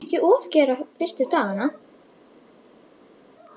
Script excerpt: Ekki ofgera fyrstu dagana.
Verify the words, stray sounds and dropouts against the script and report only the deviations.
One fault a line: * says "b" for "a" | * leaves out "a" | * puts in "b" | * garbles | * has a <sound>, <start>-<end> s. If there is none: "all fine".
all fine